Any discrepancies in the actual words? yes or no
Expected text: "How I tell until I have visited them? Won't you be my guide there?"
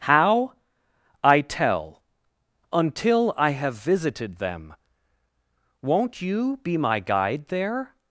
no